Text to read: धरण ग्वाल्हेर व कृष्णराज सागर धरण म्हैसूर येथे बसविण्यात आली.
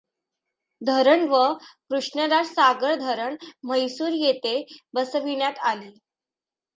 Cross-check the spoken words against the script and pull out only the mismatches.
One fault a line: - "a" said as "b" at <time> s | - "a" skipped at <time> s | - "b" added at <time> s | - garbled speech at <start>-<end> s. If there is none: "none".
- "ग्वाल्हेर" skipped at 1.2 s